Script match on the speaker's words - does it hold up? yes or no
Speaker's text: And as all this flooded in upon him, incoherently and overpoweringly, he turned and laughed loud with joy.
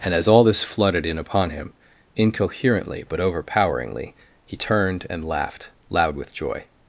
no